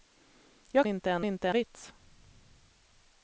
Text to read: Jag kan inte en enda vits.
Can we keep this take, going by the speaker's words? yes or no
no